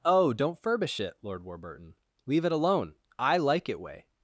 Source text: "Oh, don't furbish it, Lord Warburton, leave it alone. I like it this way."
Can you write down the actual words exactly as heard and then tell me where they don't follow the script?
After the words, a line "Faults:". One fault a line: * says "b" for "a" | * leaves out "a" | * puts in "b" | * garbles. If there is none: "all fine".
"Oh, don't furbish it, Lord Warburton, leave it alone. I like it way."
Faults:
* leaves out "this"